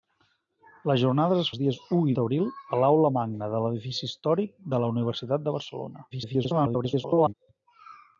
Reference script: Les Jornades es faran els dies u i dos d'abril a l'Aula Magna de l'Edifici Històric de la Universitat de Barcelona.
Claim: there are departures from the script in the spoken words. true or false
true